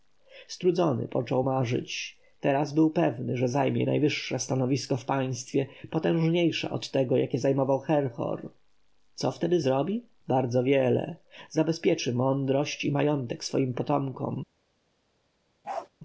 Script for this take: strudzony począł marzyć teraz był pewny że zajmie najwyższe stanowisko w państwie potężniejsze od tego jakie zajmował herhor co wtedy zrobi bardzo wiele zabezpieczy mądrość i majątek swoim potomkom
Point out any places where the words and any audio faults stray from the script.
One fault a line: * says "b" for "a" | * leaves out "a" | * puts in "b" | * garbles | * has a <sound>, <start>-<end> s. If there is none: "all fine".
* has a bark, 15.6-15.9 s